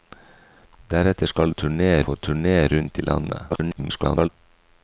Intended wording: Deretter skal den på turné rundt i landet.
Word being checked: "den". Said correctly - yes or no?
no